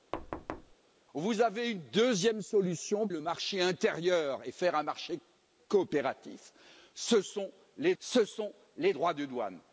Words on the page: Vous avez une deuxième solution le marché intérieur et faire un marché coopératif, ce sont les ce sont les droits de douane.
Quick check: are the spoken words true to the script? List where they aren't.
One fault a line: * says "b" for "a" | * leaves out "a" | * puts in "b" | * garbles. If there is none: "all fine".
all fine